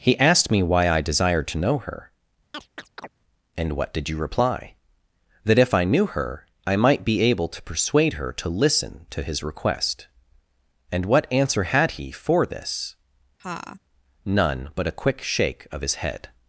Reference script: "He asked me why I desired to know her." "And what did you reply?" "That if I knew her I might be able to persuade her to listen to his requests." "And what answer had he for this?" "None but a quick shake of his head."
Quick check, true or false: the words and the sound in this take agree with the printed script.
false